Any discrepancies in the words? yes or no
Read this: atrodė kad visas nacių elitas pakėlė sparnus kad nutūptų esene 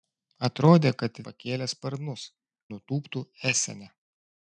yes